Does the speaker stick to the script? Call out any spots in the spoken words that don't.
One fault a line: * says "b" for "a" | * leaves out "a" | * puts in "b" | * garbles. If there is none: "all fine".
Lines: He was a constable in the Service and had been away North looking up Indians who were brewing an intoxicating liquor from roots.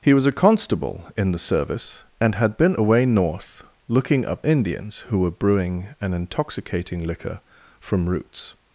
all fine